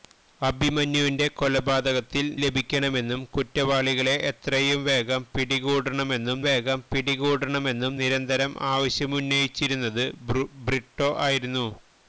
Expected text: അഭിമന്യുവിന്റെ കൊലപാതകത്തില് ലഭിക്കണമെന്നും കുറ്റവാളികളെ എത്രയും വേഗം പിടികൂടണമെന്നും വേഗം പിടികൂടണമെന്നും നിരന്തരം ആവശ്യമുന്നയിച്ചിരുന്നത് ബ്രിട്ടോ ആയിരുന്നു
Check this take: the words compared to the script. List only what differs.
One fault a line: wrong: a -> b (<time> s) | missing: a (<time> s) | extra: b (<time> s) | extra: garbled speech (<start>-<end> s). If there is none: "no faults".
no faults